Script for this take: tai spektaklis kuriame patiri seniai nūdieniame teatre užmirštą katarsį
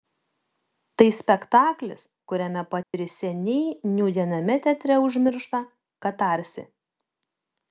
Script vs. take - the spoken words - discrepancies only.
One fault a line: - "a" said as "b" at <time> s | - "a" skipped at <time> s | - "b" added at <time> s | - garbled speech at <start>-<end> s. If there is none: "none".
none